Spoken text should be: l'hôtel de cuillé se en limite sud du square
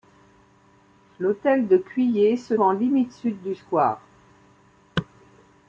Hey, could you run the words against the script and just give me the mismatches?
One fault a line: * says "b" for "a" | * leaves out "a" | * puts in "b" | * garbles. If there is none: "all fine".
all fine